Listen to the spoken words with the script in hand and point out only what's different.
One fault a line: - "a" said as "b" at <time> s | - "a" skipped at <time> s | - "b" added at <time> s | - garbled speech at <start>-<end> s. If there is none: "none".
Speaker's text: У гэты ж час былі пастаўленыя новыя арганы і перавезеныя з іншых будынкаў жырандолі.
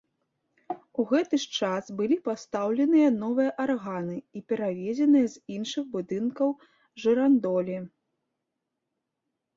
none